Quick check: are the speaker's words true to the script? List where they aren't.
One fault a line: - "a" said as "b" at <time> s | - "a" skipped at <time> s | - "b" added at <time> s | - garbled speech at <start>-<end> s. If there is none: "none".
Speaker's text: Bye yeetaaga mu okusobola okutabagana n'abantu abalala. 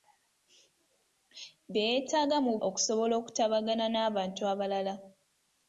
none